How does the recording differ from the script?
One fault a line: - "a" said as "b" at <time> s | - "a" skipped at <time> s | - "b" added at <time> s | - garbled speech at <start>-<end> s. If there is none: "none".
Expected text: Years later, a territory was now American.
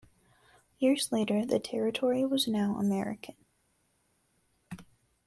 - "a" said as "the" at 1.4 s